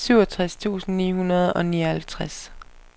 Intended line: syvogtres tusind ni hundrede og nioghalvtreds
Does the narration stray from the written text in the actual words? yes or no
no